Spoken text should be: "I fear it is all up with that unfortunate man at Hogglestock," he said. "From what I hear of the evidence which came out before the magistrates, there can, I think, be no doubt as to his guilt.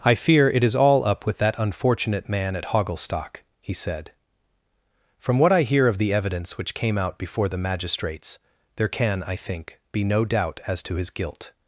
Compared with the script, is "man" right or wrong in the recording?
right